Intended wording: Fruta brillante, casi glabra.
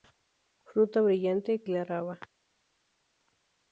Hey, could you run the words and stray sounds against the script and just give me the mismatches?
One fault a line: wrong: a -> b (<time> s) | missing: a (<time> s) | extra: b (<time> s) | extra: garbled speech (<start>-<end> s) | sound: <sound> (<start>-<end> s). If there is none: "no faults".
missing: casi (1.6 s)